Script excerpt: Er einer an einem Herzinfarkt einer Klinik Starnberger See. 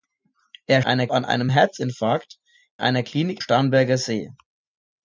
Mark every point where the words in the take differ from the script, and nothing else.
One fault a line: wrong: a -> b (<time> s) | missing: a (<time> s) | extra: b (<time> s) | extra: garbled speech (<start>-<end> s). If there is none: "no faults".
no faults